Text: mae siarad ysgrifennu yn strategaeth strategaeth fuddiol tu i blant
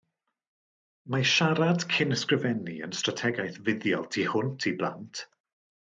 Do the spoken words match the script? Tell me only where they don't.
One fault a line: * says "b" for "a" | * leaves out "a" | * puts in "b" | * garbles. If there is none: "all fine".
* puts in "cyn"
* leaves out "strategaeth"
* puts in "hwnt"